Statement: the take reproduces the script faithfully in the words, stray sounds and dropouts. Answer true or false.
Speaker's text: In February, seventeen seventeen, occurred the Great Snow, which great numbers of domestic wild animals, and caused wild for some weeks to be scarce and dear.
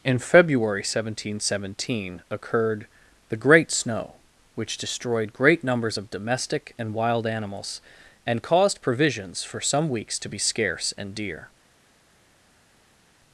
false